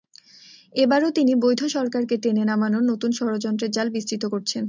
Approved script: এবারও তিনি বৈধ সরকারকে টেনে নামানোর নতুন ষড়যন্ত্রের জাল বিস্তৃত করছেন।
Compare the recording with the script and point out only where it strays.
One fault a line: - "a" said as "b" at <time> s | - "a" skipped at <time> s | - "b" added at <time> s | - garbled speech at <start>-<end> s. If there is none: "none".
none